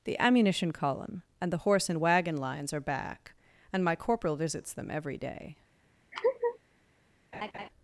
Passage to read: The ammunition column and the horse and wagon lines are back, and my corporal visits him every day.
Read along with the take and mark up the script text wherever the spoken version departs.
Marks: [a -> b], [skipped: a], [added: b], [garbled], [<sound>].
The ammunition column and the horse and wagon lines are back, and my corporal visits [him -> them] every day. [laugh] [laugh]